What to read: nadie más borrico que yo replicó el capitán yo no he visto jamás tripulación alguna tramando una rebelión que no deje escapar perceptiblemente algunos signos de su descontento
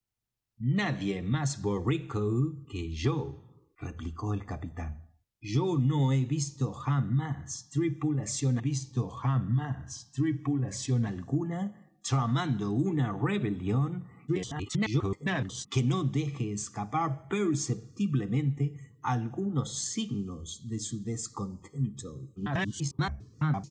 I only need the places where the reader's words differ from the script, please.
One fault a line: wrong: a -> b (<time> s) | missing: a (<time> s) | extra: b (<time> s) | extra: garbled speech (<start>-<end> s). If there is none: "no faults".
extra: visto jamás tripulación (8.6 s)
extra: garbled speech (14.3-15.7 s)
extra: garbled speech (22.4-23.7 s)